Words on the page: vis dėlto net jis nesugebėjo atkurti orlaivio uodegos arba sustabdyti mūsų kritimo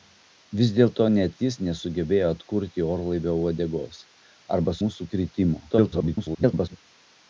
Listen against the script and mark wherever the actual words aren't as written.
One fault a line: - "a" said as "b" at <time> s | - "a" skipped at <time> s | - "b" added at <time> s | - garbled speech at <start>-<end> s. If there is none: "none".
- "sustabdyti" skipped at 4.8 s
- garbled speech at 5.7-6.8 s